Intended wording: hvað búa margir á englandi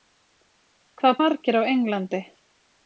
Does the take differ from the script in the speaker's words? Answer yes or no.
yes